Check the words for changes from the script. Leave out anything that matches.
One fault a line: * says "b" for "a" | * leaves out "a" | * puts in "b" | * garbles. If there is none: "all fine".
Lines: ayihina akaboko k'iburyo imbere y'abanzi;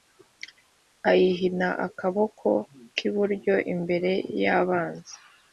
all fine